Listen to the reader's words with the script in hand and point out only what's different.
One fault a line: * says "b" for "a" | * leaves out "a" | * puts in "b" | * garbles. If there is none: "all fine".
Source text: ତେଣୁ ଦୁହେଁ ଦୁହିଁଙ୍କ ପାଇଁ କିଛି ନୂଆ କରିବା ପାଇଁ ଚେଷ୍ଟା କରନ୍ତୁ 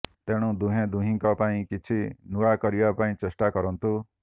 all fine